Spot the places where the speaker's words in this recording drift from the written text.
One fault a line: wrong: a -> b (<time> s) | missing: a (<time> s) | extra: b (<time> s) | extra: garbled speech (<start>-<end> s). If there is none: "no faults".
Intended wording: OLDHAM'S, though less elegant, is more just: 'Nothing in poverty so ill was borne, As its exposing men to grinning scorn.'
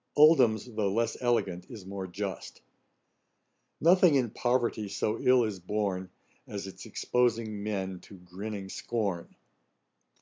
wrong: was -> is (5.4 s)